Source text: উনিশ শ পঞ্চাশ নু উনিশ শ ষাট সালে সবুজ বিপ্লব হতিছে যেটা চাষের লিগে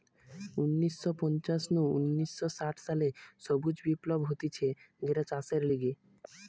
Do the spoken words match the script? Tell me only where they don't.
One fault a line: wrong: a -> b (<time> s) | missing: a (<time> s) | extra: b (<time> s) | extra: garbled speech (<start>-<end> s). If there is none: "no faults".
no faults